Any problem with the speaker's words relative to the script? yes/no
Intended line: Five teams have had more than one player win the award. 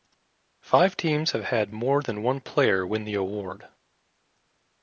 no